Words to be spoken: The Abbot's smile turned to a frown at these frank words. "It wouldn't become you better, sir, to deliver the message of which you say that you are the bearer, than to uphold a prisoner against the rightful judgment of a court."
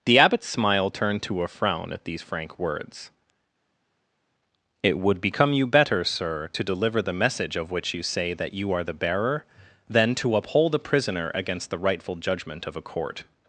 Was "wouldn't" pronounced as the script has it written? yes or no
no